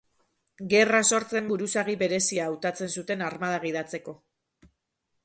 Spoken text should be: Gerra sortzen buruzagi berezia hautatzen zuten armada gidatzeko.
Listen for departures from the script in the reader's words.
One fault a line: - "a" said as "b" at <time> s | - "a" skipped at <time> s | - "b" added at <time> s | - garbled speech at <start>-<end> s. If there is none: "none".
none